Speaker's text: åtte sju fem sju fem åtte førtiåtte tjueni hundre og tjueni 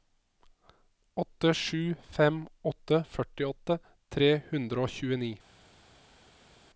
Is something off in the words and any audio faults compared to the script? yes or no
yes